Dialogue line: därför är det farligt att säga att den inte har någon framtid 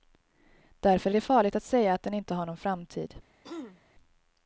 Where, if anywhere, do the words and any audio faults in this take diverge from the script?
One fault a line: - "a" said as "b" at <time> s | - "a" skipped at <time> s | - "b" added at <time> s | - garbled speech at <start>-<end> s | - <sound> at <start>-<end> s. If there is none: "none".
- throat clearing at 3.4-3.8 s